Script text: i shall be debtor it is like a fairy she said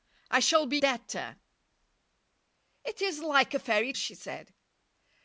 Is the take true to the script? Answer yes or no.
yes